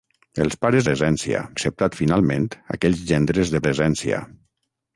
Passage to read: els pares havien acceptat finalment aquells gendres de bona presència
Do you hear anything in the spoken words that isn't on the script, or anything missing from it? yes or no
yes